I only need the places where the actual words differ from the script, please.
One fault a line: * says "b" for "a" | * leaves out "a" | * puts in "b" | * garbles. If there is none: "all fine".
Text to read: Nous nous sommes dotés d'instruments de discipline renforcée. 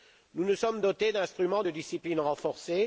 all fine